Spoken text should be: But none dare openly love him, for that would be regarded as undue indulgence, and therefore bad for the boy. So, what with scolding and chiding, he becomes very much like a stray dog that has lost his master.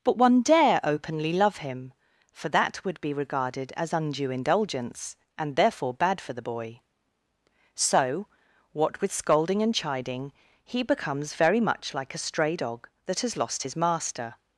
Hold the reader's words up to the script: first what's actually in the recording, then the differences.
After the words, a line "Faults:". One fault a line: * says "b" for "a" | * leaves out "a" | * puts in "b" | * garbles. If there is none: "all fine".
But one dare openly love him, for that would be regarded as undue indulgence, and therefore bad for the boy. So, what with scolding and chiding, he becomes very much like a stray dog that has lost his master.
Faults:
* says "one" for "none"